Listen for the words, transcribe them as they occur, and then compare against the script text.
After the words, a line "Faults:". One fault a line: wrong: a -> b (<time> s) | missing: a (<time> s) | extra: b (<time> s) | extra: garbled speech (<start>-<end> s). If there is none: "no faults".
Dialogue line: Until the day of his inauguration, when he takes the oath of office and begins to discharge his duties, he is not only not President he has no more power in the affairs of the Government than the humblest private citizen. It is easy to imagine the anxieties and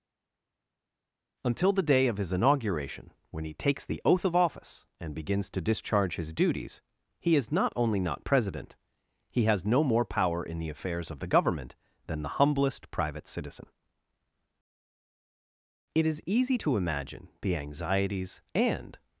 Until the day of his inauguration, when he takes the oath of office and begins to discharge his duties, he is not only not President he has no more power in the affairs of the Government than the humblest private citizen. It is easy to imagine the anxieties and
Faults:
no faults